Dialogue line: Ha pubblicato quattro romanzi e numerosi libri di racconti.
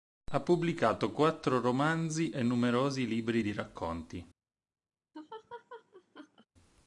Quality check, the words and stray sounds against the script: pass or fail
fail